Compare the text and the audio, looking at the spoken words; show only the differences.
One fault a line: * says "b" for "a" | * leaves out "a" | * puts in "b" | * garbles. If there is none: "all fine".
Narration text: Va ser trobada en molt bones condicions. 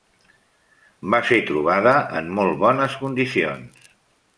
all fine